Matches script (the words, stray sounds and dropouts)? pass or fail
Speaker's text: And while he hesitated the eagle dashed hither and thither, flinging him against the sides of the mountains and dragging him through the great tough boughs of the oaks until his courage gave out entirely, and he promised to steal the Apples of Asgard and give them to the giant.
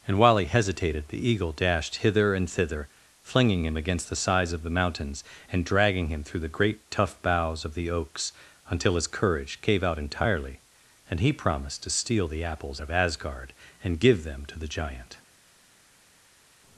pass